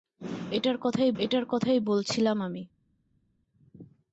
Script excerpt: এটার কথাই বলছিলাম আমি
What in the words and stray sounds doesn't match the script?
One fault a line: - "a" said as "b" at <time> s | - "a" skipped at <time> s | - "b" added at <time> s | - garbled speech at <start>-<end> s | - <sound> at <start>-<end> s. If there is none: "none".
- "এটার কথাই" added at 1.2 s